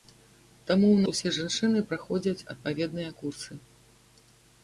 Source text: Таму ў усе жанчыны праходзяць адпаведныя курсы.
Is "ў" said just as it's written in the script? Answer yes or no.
yes